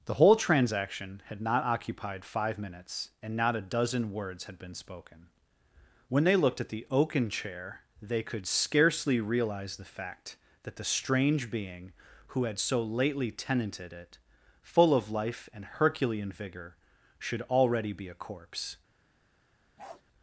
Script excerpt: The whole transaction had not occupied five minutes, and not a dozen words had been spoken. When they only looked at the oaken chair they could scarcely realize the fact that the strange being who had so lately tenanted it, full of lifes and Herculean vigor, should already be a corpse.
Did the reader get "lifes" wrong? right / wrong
wrong